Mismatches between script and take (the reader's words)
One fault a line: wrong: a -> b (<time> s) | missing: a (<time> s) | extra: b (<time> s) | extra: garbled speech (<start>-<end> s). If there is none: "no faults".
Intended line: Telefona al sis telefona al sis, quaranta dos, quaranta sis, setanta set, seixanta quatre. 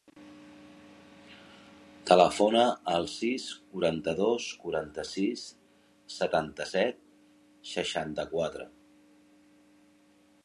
missing: telefona al sis (3.5 s)